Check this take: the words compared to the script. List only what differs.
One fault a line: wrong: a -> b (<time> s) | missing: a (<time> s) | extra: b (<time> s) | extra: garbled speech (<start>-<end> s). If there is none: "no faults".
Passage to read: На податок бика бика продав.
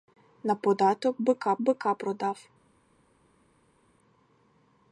no faults